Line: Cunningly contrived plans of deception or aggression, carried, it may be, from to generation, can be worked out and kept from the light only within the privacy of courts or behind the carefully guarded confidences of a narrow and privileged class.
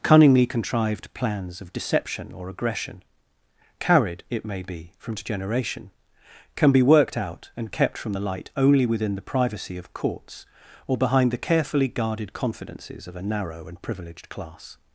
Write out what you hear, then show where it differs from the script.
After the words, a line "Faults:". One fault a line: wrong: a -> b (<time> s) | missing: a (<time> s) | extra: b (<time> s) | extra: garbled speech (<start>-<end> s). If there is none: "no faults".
Cunningly contrived plans of deception or aggression, carried, it may be, from to generation, can be worked out and kept from the light only within the privacy of courts or behind the carefully guarded confidences of a narrow and privileged class.
Faults:
no faults